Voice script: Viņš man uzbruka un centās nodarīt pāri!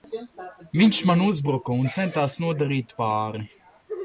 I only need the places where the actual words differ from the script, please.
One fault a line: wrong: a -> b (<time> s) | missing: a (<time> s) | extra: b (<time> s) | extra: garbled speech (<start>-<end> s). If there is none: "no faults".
no faults